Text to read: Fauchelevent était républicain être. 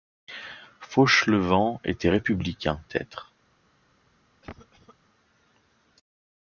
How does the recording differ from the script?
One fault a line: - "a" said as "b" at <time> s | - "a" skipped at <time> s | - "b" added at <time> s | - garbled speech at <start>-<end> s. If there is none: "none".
none